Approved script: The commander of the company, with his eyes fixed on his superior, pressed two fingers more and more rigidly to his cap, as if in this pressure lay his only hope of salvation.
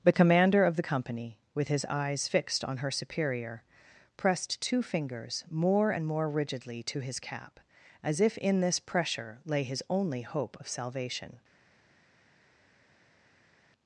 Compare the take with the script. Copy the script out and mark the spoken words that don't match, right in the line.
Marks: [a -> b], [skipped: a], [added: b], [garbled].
The commander of the company, with his eyes fixed on [his -> her] superior, pressed two fingers more and more rigidly to his cap, as if in this pressure lay his only hope of salvation.